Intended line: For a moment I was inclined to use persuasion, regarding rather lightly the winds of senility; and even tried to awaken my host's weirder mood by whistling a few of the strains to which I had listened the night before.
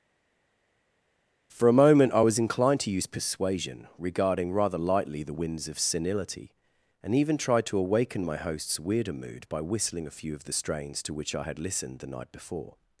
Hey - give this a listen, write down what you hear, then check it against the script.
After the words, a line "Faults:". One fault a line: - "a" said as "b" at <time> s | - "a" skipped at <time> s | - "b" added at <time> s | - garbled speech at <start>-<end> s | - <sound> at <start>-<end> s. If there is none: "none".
For a moment I was inclined to use persuasion, regarding rather lightly the winds of senility; and even tried to awaken my host's weirder mood by whistling a few of the strains to which I had listened the night before.
Faults:
none